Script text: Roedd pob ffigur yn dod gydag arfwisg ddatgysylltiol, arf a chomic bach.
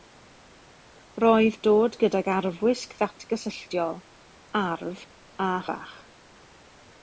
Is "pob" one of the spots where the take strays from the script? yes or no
yes